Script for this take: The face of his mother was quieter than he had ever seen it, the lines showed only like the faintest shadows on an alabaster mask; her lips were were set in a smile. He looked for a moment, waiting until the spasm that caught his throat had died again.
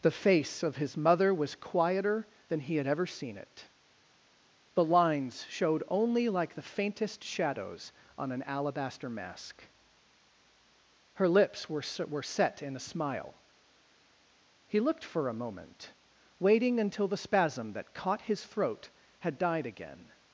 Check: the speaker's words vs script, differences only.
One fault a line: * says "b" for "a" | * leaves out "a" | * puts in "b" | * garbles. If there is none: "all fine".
all fine